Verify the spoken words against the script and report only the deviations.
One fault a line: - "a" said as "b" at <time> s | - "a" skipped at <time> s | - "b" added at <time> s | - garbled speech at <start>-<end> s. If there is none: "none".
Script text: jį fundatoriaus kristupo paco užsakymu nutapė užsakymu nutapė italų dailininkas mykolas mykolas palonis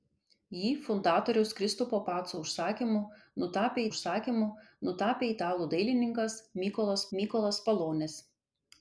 none